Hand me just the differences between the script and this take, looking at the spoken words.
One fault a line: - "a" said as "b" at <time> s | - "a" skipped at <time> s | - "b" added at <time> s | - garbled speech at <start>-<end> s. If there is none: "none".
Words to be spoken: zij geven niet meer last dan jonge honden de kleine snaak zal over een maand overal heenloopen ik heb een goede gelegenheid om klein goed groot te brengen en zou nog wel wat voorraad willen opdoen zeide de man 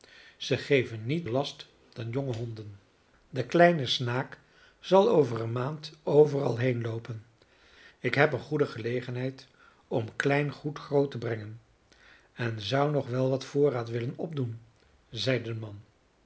- "meer" skipped at 1.3 s